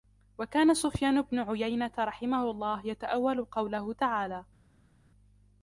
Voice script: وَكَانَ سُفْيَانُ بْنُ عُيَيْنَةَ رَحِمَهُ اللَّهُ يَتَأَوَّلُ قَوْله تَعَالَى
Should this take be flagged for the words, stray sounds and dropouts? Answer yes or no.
no